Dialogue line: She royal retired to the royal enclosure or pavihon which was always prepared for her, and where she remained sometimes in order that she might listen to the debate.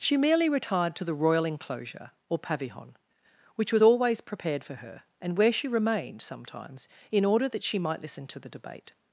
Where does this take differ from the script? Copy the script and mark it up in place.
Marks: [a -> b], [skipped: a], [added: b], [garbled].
She [royal -> merely] retired to the royal enclosure or pavihon which was always prepared for her, and where she remained sometimes in order that she might listen to the debate.